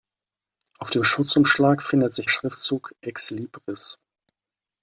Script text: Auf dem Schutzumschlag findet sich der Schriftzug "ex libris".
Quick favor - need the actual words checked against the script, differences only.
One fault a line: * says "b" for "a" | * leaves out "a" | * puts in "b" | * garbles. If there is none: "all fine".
* leaves out "der"